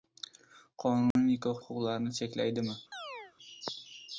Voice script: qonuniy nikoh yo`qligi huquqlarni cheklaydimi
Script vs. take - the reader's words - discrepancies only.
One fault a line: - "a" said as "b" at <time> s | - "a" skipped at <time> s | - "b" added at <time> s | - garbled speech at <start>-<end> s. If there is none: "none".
- "yo`qligi" skipped at 1.6 s